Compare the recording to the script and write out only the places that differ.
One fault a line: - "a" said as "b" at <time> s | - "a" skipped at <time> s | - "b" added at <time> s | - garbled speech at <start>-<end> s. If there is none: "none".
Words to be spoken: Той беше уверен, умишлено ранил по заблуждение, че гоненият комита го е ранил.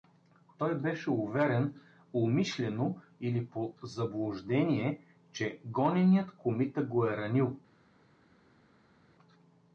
- "ранил" said as "или" at 3.2 s